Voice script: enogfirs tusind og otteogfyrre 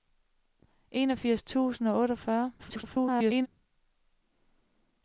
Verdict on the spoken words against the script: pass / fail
fail